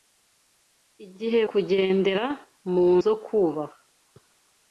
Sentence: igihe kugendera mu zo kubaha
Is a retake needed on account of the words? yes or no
no